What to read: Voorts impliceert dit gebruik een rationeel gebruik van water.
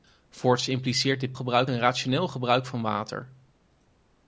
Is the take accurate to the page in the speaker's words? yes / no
yes